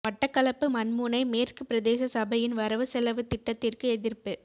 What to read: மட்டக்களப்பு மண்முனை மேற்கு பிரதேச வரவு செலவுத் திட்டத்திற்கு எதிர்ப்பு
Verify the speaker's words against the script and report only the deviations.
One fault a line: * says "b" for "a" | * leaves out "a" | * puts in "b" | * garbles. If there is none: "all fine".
* puts in "சபையின்"